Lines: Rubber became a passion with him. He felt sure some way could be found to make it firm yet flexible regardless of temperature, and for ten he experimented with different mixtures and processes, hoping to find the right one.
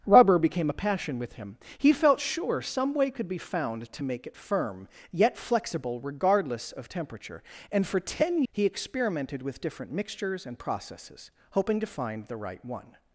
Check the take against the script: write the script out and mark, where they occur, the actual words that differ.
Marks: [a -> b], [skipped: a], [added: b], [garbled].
Rubber became a passion with him. He felt sure some way could be found to make it firm yet flexible regardless of temperature, and for ten he experimented with different mixtures and processes, hoping to find the right one.